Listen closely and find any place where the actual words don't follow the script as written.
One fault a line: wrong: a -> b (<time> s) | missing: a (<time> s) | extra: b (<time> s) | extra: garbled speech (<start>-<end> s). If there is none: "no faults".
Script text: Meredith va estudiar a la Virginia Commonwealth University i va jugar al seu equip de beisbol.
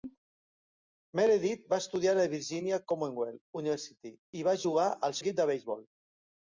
missing: seu (5.2 s)